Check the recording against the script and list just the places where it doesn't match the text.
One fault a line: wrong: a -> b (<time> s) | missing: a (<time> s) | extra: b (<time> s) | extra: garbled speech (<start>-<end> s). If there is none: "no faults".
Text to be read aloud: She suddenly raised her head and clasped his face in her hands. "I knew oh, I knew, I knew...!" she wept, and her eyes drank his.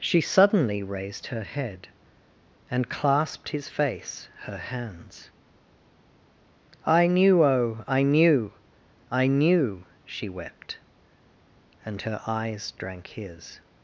missing: in (4.3 s)